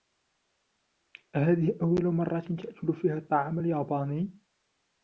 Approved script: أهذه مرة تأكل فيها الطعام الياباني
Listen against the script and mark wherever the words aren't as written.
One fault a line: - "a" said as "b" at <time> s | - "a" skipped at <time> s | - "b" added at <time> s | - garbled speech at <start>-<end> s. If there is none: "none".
- "أول" added at 1.8 s